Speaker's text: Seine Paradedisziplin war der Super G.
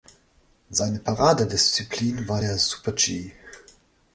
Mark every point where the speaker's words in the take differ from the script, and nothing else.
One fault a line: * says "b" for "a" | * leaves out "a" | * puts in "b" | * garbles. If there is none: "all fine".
all fine